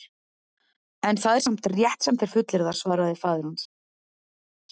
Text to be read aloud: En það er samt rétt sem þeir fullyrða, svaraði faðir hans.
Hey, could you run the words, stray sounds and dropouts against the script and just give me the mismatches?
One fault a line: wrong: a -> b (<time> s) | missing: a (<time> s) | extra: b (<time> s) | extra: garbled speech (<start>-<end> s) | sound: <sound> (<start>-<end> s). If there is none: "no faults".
no faults